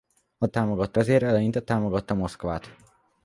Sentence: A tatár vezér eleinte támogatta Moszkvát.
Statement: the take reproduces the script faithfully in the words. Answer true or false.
false